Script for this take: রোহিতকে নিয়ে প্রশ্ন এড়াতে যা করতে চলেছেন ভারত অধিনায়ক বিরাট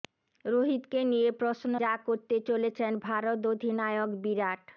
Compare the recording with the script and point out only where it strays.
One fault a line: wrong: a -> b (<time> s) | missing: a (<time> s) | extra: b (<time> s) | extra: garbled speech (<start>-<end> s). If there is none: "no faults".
missing: এড়াতে (1.7 s)